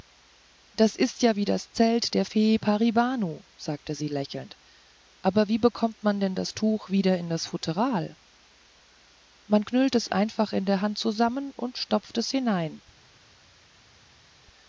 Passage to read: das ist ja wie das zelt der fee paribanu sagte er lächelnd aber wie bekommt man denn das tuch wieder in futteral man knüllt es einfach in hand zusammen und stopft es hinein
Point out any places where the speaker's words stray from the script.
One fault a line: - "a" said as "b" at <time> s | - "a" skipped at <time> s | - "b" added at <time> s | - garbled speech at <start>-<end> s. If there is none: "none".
- "er" said as "sie" at 3.9 s
- "das" added at 7.3 s
- "der" added at 10.7 s